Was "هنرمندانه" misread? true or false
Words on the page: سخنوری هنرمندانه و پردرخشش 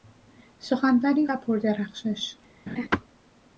true